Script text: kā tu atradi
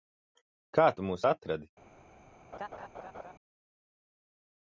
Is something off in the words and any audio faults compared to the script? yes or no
yes